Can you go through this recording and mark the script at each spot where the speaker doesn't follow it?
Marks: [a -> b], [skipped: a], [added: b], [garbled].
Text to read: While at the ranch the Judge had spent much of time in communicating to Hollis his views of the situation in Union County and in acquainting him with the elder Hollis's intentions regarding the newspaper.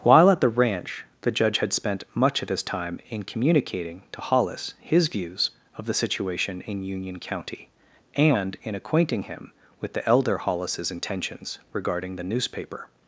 While at the ranch the Judge had spent much of [added: his] time in communicating to Hollis his views of the situation in Union County and in acquainting him with the elder Hollis's intentions regarding the newspaper.